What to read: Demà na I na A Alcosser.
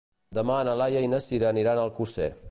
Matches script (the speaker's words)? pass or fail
fail